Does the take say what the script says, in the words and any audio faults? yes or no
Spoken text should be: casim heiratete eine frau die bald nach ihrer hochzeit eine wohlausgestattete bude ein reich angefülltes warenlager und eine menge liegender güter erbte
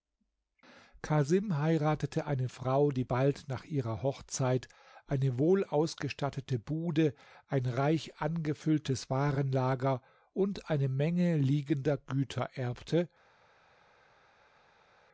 yes